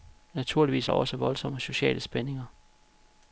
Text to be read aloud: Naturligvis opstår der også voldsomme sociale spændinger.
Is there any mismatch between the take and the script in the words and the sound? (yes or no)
yes